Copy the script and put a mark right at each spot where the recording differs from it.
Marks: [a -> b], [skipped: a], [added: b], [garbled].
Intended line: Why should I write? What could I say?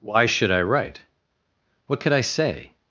Why should I write? What could I say?